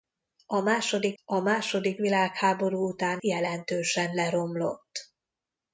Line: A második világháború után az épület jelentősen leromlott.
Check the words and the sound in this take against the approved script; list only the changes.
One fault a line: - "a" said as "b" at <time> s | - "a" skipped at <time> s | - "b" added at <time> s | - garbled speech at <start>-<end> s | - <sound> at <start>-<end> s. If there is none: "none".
- "a második" added at 1.2 s
- "az épület" skipped at 3.2 s